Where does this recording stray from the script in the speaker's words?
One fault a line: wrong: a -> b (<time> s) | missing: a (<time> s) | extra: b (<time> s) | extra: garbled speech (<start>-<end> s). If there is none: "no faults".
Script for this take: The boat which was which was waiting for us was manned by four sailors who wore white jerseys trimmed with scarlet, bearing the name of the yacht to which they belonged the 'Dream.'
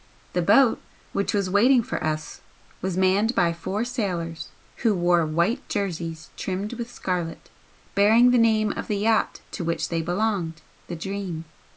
missing: which was (1.5 s)